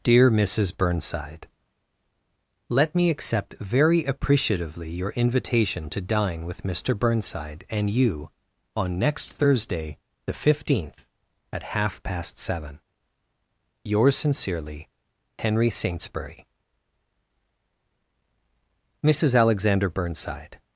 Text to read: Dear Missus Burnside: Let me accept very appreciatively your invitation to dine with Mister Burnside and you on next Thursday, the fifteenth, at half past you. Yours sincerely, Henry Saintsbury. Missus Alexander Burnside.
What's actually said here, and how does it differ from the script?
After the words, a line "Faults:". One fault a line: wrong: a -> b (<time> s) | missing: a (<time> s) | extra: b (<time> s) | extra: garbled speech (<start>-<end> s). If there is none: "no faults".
Dear Missus Burnside: Let me accept very appreciatively your invitation to dine with Mister Burnside and you on next Thursday, the fifteenth, at half past seven. Yours sincerely, Henry Saintsbury. Missus Alexander Burnside.
Faults:
wrong: you -> seven (12.4 s)